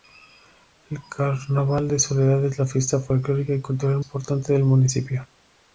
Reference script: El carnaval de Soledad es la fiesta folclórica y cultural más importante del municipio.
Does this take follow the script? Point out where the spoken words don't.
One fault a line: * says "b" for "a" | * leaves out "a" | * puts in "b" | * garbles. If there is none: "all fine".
* leaves out "más"